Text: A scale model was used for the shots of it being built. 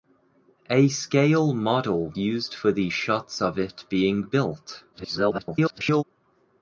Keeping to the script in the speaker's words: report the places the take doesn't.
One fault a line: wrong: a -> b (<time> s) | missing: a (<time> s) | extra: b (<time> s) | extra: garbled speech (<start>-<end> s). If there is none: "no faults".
missing: was (2.1 s)
extra: garbled speech (4.9-6.0 s)